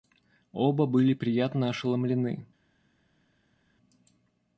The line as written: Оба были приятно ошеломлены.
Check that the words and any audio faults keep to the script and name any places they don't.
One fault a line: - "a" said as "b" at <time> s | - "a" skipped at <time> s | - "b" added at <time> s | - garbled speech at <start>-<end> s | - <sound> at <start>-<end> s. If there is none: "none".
none